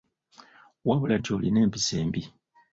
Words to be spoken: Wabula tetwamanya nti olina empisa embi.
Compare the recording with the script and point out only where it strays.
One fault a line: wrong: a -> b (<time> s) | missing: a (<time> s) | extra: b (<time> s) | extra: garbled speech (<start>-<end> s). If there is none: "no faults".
missing: tetwamanya (1.1 s)